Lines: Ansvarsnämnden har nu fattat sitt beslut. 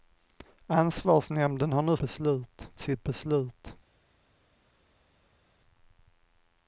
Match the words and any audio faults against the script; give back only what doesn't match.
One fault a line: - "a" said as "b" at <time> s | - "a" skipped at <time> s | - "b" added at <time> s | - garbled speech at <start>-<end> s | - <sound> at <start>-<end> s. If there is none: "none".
- "fattat" said as "beslut" at 2.0 s